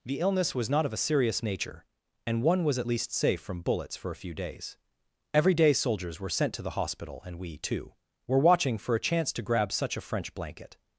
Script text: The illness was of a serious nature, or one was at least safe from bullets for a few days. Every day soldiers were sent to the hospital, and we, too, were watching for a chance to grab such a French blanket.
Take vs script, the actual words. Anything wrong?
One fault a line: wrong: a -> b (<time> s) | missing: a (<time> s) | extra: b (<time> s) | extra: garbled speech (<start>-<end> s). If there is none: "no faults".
extra: not (0.7 s)
wrong: or -> and (2.2 s)